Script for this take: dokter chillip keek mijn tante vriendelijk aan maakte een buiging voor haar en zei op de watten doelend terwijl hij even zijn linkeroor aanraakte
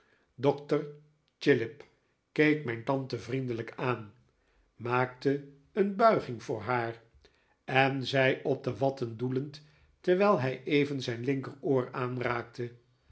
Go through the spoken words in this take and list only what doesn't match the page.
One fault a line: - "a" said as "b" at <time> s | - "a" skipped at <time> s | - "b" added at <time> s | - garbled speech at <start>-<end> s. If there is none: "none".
none